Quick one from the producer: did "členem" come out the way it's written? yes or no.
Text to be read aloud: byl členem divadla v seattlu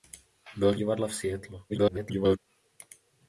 no